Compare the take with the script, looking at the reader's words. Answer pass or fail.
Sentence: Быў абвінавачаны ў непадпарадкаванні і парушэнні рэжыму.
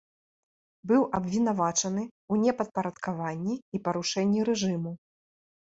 pass